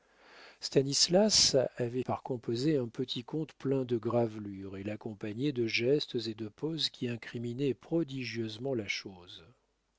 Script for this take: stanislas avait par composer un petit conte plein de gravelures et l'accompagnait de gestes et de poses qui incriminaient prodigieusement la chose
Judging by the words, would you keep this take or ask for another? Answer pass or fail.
pass